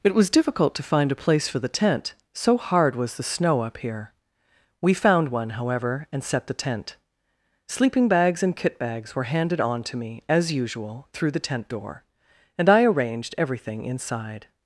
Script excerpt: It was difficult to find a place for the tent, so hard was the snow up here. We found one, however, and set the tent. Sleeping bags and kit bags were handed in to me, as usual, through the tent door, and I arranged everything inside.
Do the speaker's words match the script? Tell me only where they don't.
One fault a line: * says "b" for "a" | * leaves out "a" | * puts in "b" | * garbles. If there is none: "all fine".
* says "on" for "in"